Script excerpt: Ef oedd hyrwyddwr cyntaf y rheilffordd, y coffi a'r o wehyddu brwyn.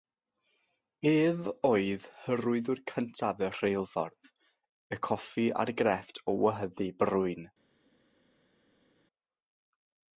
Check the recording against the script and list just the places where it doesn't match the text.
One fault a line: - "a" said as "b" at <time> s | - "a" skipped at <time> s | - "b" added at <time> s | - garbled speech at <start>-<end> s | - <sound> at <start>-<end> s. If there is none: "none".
- "grefft" added at 5.8 s